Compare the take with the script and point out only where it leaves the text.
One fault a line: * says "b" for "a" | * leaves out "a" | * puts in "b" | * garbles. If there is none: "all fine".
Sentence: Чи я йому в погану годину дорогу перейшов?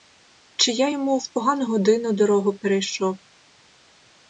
all fine